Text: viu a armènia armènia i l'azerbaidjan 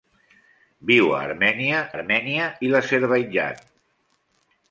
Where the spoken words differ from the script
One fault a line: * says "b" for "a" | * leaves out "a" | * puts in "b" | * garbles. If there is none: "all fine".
all fine